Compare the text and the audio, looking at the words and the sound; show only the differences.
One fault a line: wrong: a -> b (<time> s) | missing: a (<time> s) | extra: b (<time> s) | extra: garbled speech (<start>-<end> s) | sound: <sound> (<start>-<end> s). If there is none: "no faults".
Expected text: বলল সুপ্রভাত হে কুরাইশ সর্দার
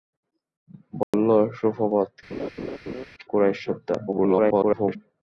sound: dropout (1.0-1.1 s)
missing: হে (2.1 s)
sound: laugh (2.3-3.1 s)
extra: garbled speech (4.1-5.0 s)